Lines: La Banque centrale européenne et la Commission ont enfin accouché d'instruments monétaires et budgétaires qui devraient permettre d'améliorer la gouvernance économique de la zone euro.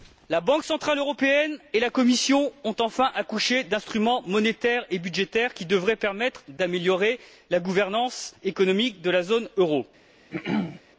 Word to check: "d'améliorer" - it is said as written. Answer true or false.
true